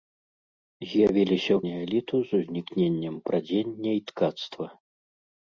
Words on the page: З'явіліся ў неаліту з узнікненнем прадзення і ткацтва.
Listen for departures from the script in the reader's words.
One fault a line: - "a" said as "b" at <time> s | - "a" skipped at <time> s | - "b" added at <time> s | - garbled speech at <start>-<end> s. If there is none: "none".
none